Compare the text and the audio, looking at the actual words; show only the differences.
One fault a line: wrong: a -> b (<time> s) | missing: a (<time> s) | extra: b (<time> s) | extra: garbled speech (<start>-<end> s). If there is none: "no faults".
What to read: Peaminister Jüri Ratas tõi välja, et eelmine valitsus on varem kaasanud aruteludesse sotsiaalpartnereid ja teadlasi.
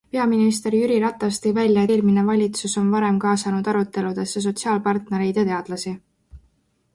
missing: et (1.8 s)